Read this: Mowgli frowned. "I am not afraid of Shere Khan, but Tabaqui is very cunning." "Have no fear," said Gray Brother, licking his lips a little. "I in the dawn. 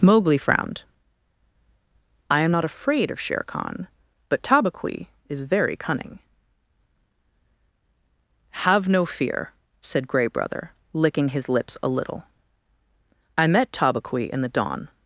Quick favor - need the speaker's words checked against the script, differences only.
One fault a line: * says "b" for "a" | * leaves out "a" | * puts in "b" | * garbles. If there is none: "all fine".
* puts in "met Tabaqui"